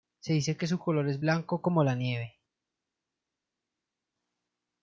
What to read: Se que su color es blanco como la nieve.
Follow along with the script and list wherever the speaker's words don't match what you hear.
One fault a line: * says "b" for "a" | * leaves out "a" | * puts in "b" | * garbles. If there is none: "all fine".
* puts in "dice"